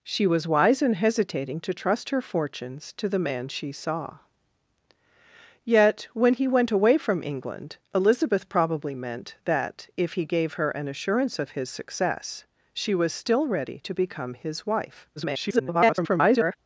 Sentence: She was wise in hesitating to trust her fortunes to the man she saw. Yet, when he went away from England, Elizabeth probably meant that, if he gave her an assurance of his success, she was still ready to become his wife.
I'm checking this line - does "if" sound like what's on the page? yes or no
yes